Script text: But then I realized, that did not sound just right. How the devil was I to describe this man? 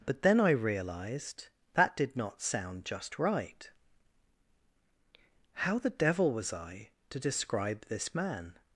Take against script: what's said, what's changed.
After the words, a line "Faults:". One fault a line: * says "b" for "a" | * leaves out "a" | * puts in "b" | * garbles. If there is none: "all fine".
But then I realized, that did not sound just right. How the devil was I to describe this man?
Faults:
all fine